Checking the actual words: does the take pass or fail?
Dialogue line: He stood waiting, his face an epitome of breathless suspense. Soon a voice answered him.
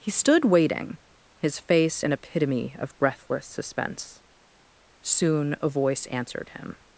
pass